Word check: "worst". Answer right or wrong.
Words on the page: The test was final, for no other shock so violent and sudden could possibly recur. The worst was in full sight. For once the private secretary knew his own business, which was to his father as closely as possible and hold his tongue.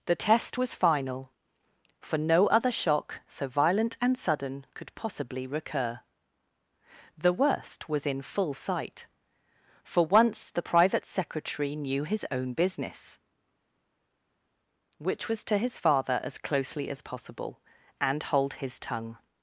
right